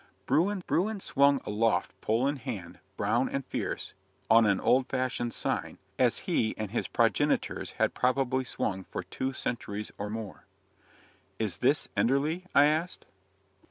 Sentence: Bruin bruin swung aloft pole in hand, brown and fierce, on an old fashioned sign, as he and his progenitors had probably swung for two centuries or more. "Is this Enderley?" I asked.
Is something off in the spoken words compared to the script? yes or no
no